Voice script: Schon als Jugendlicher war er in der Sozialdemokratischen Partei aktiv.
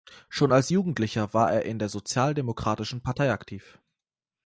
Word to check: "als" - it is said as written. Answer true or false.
true